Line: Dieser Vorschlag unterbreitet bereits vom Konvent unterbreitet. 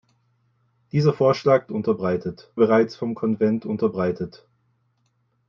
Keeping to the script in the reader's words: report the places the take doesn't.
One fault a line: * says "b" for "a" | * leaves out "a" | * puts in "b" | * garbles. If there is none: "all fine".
all fine